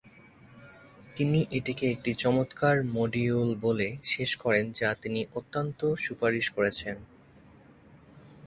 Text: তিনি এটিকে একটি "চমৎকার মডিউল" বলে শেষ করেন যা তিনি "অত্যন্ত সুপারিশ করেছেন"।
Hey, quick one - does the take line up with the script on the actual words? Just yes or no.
yes